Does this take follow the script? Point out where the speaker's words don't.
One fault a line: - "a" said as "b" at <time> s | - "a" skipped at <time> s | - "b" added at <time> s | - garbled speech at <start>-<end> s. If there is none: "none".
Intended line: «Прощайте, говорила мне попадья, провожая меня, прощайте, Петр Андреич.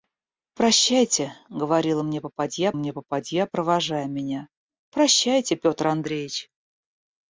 - "мне попадья" added at 2.7 s